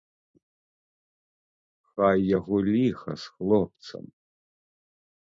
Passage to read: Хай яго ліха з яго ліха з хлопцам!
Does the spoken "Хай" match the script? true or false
true